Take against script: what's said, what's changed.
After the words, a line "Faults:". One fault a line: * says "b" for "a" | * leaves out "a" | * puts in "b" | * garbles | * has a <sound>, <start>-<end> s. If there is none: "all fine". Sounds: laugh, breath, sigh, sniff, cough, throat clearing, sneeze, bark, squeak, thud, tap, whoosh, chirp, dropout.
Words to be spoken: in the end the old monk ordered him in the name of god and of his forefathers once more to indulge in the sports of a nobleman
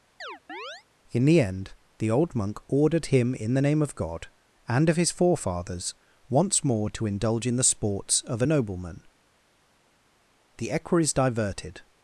in the end the old monk ordered him in the name of god and of his forefathers once more to indulge in the sports of a nobleman the equerries diverted
Faults:
* has a chirp, 0.2-0.8 s
* puts in "the equerries diverted"